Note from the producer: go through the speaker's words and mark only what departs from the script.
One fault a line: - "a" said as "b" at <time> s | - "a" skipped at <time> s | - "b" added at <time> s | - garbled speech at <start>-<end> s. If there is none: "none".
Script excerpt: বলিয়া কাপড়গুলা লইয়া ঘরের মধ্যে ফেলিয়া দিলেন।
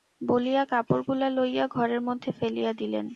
none